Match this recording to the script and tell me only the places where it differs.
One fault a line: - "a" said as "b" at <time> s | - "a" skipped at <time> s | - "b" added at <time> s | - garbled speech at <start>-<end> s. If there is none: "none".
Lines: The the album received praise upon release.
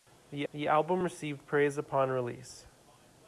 none